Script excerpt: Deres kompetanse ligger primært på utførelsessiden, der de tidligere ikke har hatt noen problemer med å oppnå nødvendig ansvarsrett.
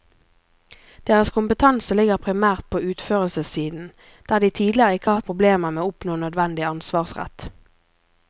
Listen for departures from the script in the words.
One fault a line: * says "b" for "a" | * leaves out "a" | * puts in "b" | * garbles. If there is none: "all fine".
* leaves out "noen"